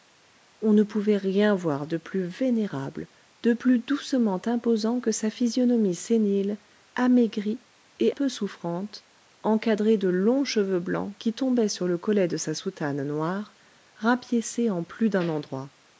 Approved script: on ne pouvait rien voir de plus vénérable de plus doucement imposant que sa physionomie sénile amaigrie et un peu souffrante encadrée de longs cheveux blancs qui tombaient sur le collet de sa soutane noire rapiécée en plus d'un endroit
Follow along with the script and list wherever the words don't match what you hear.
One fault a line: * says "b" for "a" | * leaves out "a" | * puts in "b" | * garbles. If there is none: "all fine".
* leaves out "un"